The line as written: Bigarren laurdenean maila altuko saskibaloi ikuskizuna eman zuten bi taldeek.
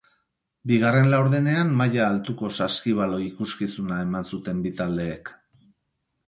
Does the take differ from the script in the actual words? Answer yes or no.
no